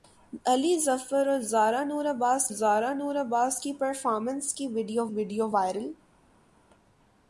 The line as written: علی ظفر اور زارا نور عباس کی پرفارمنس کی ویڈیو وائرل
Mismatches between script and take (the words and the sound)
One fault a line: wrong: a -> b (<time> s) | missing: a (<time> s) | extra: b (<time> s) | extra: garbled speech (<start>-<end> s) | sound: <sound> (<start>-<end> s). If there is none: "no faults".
extra: زارا نور عباس (2.5 s)
extra: ویڈیو (5.1 s)